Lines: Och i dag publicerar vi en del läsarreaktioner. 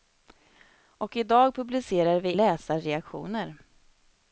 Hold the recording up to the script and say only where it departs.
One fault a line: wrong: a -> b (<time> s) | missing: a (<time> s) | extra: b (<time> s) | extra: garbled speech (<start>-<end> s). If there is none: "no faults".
missing: en del (2.4 s)